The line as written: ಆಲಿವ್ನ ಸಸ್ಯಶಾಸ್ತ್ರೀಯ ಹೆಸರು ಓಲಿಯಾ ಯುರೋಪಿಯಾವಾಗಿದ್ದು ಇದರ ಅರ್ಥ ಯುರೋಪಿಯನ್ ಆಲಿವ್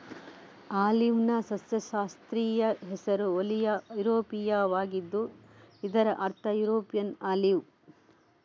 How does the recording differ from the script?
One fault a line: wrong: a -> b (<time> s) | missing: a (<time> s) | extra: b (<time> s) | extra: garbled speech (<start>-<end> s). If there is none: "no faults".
no faults